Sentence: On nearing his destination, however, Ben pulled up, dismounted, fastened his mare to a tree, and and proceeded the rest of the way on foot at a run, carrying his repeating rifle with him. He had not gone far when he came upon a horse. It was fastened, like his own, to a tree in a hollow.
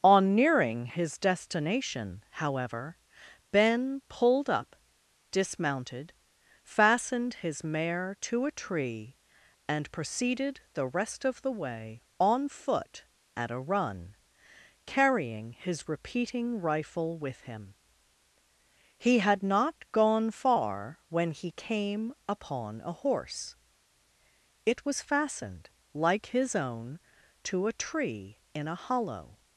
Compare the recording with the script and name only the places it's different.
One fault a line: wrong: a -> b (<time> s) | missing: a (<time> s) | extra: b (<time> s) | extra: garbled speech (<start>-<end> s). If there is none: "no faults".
missing: and (9.9 s)